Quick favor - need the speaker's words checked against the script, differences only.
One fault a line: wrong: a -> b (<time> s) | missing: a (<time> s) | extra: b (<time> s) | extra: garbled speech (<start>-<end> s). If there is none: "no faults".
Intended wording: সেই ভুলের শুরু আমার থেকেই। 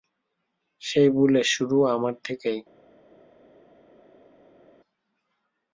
no faults